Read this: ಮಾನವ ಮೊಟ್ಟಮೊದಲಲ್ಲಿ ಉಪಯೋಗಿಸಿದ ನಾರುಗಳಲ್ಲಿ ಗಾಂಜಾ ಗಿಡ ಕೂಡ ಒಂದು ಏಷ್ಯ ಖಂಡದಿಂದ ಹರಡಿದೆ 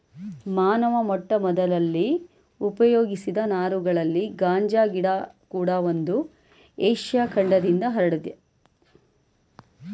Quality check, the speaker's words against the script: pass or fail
pass